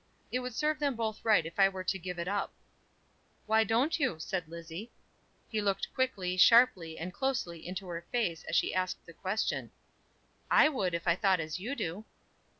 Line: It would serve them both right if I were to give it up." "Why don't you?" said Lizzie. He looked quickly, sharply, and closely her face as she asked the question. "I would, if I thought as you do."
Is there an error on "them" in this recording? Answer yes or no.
no